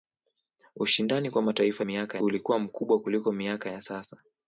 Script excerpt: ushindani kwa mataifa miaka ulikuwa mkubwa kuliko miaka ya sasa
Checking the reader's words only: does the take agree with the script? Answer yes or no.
yes